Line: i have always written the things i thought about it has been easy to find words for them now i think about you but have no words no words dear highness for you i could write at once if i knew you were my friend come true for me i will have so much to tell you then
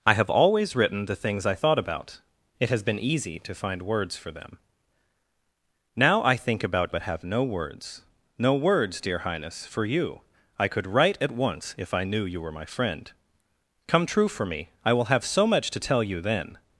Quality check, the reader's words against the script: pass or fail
fail